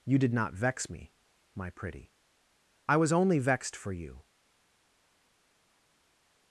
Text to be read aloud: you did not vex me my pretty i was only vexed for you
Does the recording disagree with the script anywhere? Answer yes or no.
no